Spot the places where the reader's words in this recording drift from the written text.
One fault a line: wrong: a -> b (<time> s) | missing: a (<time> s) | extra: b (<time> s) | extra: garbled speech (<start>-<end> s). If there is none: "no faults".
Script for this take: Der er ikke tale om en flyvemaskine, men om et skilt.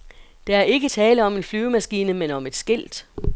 no faults